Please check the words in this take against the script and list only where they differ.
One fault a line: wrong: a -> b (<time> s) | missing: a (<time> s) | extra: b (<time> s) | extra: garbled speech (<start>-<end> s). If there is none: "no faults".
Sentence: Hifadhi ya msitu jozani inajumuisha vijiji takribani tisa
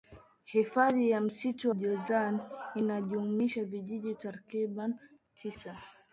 no faults